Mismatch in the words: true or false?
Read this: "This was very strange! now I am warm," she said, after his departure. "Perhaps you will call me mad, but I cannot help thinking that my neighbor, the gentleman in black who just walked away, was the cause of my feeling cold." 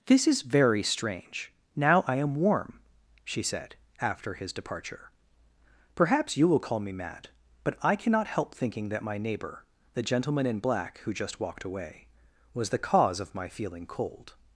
true